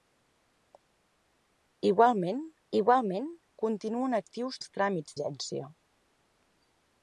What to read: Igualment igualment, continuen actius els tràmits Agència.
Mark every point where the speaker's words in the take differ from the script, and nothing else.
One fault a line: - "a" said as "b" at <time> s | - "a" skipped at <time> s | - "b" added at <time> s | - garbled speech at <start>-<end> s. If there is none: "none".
none